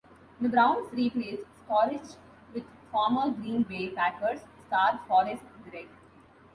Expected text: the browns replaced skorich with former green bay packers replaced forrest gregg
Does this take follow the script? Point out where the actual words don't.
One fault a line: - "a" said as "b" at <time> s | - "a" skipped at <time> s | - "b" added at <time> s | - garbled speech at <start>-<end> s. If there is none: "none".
- "replaced" said as "star" at 4.7 s